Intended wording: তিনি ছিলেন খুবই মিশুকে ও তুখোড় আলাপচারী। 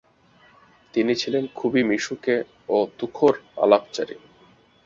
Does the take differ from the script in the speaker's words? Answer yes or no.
no